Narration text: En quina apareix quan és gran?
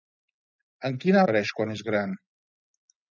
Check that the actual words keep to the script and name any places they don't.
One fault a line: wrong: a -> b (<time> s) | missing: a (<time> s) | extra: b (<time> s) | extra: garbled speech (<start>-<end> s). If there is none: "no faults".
no faults